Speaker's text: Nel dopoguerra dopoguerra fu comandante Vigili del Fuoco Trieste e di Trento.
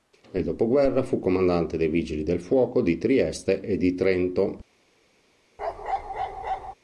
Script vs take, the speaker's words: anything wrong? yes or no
yes